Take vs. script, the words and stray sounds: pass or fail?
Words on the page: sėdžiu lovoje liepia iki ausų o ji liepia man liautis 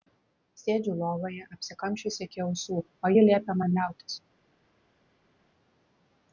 fail